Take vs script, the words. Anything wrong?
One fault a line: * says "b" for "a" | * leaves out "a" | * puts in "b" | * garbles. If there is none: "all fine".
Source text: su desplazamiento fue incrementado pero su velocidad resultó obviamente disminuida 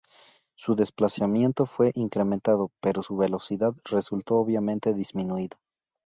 all fine